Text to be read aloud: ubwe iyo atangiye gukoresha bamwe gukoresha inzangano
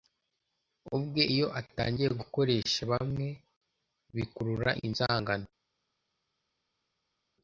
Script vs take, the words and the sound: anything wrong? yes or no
yes